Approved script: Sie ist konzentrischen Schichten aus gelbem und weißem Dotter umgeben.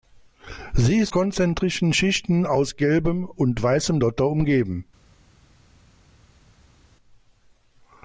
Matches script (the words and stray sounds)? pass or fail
pass